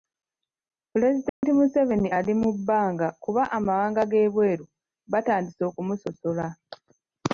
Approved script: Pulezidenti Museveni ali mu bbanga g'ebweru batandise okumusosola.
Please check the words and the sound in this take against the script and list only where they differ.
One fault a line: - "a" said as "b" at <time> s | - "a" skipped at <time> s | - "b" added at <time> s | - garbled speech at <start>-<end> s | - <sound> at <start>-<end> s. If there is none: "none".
- dropout at 1.3-1.4 s
- "kuba amawanga" added at 3.2 s